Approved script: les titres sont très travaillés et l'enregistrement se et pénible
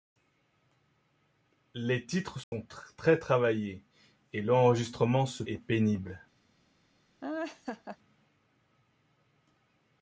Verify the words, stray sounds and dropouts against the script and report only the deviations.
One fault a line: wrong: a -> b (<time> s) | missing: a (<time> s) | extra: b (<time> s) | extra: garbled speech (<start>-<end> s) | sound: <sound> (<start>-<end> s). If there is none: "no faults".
sound: dropout (2.4-2.5 s)
sound: laugh (7.2-8.0 s)